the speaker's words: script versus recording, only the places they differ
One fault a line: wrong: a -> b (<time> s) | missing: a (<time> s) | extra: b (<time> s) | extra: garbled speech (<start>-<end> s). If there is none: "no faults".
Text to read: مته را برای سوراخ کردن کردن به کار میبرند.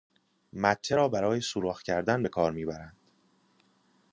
missing: کردن (2.2 s)